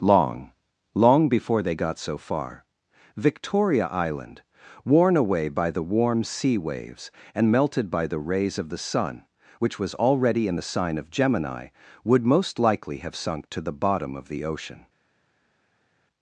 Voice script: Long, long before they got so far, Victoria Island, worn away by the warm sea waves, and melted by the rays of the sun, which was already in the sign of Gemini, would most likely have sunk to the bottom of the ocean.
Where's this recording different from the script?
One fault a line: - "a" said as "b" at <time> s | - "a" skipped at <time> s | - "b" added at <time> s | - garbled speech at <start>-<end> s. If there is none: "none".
none